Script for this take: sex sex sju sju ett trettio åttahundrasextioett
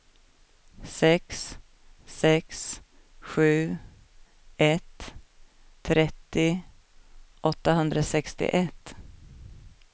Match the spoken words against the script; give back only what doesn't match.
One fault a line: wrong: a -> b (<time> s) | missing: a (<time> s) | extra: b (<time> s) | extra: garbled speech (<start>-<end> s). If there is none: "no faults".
missing: sju (3.8 s)